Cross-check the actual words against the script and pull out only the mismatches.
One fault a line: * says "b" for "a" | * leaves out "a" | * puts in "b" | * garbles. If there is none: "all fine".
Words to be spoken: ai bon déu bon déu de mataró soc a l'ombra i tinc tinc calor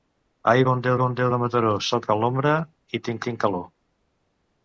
all fine